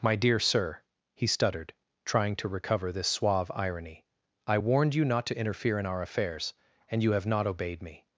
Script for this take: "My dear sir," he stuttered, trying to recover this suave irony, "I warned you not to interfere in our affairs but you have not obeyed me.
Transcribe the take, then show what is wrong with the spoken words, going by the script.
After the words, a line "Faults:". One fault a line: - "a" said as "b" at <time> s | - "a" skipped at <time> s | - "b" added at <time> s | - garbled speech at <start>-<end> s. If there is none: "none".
"My dear sir," he stuttered, trying to recover this suave irony, "I warned you not to interfere in our affairs and you have not obeyed me.
Faults:
- "but" said as "and" at 6.9 s